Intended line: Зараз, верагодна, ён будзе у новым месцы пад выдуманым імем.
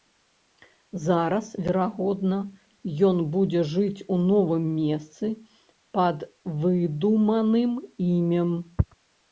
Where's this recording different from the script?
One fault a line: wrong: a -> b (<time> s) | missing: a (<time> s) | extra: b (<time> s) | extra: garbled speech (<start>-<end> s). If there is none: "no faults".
extra: жыць (3.7 s)